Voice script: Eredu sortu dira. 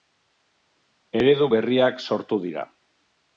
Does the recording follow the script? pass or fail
fail